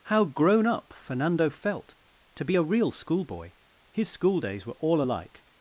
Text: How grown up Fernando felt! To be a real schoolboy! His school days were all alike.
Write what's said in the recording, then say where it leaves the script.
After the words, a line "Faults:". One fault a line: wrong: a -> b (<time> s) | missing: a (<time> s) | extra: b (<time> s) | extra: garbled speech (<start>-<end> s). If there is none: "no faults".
How grown up Fernando felt! To be a real schoolboy! His school days were all alike.
Faults:
no faults